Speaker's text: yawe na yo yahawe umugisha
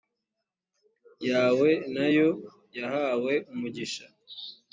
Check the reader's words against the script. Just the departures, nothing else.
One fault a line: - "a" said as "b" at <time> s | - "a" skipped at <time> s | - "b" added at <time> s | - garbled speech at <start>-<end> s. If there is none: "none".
none